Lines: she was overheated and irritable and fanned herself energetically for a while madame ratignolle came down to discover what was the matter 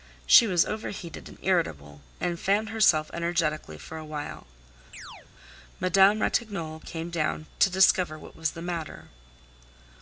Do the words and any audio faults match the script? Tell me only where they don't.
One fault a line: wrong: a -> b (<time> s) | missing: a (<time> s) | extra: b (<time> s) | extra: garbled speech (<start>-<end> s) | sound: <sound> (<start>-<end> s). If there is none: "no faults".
sound: chirp (4.9-5.3 s)